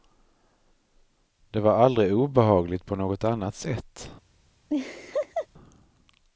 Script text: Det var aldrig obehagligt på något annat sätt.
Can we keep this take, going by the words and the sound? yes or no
no